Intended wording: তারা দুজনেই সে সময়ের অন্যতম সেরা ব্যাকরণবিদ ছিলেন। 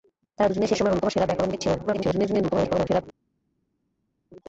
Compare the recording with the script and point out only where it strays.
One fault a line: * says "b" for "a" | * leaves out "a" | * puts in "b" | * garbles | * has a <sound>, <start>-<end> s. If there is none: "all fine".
* garbles